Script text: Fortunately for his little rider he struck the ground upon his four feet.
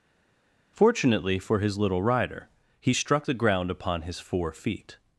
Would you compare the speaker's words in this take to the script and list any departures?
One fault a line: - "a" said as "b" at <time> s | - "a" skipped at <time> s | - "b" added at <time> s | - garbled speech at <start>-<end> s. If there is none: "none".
none